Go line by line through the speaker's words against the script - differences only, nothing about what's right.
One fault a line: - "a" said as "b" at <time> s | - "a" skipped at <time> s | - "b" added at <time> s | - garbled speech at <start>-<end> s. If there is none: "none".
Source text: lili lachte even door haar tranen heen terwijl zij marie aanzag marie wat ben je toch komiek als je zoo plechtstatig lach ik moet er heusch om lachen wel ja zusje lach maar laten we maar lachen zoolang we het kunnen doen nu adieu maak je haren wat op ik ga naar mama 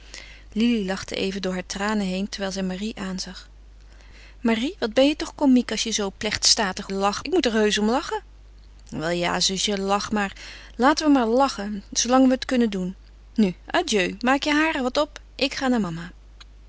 none